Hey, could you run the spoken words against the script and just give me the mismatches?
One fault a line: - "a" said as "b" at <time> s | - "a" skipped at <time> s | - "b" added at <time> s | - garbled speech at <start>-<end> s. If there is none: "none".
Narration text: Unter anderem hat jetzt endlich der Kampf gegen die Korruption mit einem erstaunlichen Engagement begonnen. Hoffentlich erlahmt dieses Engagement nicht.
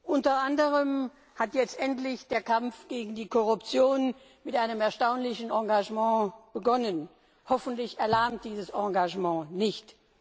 none